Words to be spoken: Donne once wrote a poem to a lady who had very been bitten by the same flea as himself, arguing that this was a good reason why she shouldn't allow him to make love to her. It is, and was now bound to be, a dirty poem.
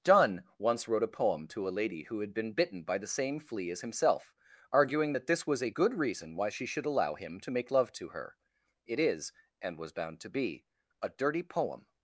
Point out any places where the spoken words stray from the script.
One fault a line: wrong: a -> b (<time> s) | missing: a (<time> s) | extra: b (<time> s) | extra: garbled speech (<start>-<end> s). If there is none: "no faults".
missing: very (2.3 s)
wrong: shouldn't -> should (6.7 s)
missing: now (9.9 s)